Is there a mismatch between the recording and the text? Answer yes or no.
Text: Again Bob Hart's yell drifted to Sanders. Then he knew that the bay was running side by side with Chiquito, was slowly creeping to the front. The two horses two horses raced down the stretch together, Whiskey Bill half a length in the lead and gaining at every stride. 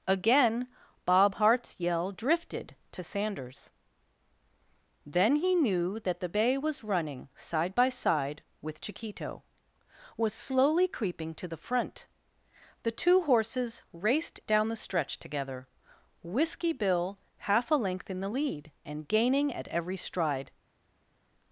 yes